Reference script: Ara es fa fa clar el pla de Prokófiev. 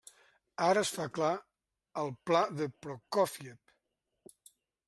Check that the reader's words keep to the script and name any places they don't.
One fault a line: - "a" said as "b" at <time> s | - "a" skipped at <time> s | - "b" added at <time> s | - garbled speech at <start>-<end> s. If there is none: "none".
- "fa" skipped at 1.1 s